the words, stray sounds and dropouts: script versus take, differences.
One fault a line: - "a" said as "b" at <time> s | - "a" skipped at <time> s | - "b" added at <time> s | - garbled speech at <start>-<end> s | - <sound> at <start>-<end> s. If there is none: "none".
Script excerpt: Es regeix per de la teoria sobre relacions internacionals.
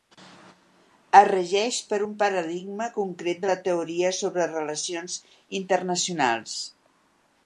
- "un paradigma concret" added at 2.0 s